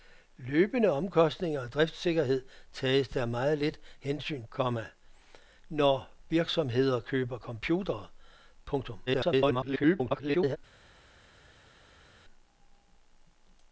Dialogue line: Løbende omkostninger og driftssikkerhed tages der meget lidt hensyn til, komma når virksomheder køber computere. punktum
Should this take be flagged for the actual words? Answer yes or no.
yes